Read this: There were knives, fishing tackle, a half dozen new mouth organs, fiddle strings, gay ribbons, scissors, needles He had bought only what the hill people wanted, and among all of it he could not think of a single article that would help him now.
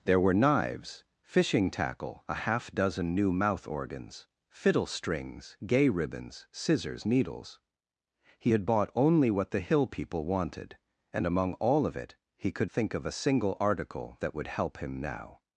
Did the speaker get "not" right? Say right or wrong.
wrong